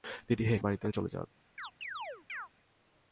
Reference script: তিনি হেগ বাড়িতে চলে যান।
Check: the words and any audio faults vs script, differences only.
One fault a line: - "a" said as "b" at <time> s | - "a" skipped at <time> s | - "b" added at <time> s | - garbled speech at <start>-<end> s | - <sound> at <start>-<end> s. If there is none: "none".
- chirp at 1.6-2.5 s